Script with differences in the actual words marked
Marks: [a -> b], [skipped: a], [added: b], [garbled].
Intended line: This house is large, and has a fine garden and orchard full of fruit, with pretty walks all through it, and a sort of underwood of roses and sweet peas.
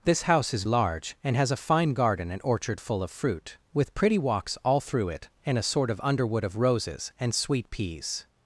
This house is large, and has a fine garden and orchard full of fruit, with pretty walks all through it, and a sort of underwood of roses and sweet peas.